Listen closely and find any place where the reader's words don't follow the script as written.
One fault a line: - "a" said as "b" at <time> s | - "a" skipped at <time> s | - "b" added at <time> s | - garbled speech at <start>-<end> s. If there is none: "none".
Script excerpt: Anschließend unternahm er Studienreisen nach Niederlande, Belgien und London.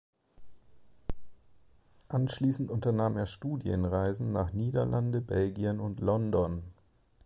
none